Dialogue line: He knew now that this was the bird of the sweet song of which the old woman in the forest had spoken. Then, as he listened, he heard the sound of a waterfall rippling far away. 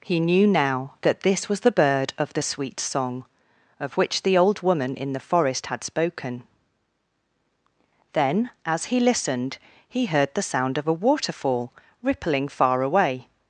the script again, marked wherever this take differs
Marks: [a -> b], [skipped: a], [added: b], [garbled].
He knew now that this was the bird of the sweet song of which the old woman in the forest had spoken. Then, as he listened, he heard the sound of a waterfall rippling far away.